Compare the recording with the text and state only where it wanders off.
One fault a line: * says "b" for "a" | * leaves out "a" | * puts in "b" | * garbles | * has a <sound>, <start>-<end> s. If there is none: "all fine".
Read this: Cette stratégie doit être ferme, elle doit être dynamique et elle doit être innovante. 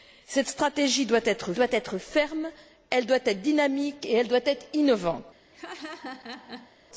* puts in "doit être"
* has a laugh, 5.5-6.8 s